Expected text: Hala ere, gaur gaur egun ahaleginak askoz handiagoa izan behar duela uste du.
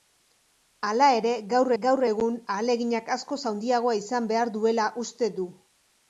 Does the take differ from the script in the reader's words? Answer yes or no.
no